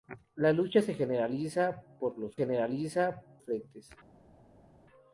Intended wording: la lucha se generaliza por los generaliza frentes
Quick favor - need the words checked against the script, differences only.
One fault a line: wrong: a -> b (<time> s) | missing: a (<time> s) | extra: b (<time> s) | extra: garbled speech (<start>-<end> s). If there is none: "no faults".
no faults